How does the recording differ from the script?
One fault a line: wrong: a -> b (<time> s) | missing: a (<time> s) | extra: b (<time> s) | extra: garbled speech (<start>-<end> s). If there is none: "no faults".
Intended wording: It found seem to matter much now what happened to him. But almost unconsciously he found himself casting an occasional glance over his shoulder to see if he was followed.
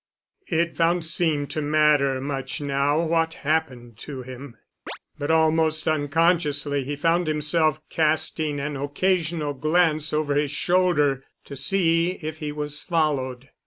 no faults